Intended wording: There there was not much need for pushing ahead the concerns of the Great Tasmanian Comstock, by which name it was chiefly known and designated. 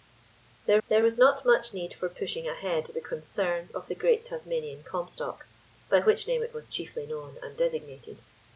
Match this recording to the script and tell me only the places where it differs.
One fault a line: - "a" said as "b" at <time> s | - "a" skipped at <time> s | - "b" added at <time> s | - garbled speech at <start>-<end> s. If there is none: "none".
none